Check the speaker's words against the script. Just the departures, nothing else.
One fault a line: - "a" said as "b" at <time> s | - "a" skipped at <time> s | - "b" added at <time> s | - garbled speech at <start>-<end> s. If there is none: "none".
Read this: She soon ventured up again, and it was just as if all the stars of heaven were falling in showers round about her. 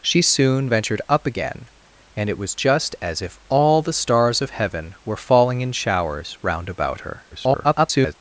- garbled speech at 7.3-8.1 s